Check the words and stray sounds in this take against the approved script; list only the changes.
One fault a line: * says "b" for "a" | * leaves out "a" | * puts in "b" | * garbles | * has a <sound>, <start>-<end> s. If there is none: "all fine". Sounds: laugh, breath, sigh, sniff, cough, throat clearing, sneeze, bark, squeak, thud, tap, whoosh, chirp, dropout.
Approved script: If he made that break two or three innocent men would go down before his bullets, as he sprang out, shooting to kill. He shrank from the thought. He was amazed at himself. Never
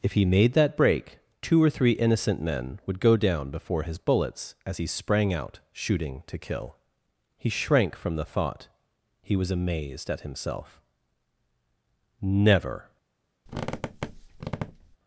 * has a squeak, 13.5-15.0 s